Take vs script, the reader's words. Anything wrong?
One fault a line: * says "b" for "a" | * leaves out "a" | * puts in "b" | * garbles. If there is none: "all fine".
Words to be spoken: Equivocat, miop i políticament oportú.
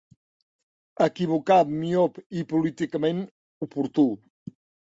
all fine